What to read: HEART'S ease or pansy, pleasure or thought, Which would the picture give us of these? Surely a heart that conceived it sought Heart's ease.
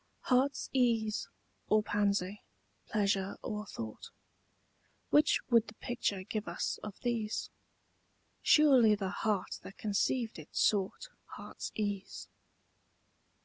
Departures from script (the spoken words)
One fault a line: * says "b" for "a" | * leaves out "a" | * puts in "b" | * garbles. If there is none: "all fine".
* says "the" for "a"